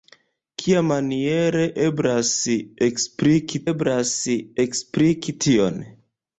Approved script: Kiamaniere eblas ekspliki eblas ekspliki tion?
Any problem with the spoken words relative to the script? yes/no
no